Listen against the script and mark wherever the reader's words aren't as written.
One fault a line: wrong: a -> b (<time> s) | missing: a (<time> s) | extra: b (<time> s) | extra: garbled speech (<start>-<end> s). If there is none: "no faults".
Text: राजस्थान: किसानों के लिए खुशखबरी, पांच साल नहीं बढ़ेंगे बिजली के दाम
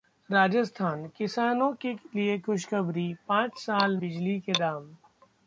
missing: नहीं बढ़ेंगे (4.0 s)